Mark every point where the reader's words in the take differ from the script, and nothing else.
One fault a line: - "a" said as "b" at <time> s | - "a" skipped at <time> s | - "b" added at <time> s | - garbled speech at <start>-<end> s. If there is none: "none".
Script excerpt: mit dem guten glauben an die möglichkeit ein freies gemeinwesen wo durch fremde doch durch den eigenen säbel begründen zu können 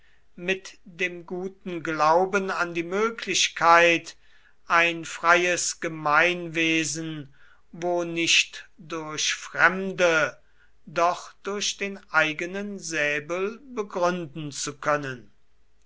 - "nicht" added at 8.1 s